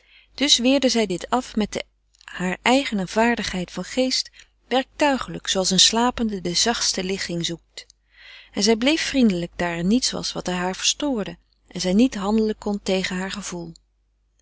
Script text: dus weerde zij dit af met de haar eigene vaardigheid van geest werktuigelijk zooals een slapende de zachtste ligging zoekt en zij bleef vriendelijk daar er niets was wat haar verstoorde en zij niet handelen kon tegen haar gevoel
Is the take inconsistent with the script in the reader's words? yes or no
no